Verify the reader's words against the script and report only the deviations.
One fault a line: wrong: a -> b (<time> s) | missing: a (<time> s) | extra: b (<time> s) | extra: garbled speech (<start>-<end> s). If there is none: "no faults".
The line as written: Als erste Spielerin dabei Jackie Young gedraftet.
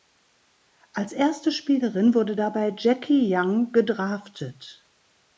extra: wurde (2.1 s)